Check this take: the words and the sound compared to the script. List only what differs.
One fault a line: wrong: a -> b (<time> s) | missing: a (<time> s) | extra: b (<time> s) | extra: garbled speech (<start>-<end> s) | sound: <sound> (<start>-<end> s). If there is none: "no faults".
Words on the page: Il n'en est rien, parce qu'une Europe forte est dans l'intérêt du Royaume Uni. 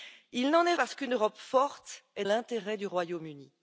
missing: rien (0.8 s)
missing: dans (2.3 s)